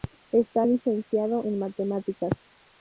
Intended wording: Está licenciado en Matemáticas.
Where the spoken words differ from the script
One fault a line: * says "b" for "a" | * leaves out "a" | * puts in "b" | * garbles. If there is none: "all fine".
all fine